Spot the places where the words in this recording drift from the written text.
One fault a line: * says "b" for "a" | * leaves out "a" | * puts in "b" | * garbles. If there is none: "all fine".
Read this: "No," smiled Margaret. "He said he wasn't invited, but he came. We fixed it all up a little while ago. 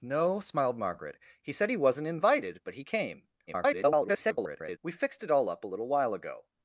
* garbles